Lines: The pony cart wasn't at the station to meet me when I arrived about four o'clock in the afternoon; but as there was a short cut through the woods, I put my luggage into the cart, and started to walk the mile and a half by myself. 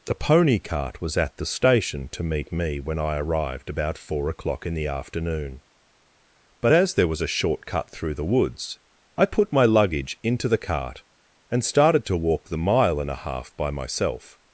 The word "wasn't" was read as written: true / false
false